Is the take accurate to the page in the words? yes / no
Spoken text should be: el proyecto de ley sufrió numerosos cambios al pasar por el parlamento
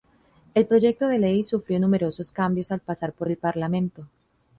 yes